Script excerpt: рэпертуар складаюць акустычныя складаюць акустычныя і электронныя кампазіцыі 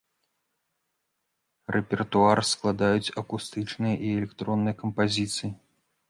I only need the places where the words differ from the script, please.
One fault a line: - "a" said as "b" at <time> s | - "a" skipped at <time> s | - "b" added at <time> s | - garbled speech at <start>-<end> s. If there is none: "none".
- "складаюць акустычныя" skipped at 3.9 s